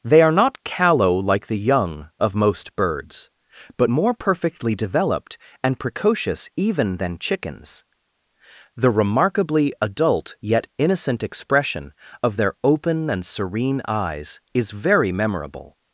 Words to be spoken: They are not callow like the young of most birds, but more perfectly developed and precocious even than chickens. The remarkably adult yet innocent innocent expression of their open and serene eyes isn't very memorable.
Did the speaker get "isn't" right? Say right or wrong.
wrong